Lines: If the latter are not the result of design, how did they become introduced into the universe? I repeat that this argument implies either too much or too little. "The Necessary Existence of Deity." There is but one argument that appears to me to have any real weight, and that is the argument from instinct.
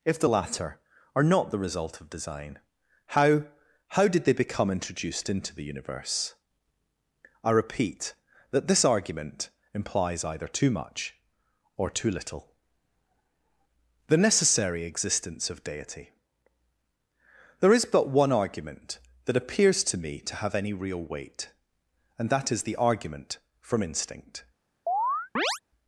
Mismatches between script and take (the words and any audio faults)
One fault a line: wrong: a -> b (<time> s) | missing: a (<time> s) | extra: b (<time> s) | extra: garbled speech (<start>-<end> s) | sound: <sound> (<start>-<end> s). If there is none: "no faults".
extra: how (3.9 s)
sound: chirp (24.9-25.6 s)